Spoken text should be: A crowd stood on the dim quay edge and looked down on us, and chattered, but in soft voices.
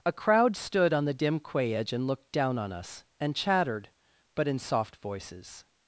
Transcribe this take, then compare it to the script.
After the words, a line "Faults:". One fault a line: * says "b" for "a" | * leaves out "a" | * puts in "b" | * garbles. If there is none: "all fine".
A crowd stood on the dim quay edge and looked down on us, and chattered, but in soft voices.
Faults:
all fine